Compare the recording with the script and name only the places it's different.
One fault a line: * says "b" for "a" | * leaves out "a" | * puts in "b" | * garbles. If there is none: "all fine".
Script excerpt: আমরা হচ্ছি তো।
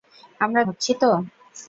all fine